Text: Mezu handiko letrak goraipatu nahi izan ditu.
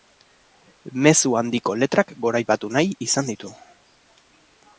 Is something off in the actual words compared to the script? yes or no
no